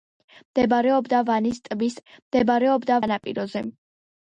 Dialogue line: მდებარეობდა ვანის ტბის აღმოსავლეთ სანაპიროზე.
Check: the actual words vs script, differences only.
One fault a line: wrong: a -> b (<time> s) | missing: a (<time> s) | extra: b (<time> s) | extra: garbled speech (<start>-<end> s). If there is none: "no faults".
wrong: აღმოსავლეთ -> მდებარეობდა (2.1 s)